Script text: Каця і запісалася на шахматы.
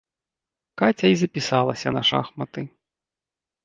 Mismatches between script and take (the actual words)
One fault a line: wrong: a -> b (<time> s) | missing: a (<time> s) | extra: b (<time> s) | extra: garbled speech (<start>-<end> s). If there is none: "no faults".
no faults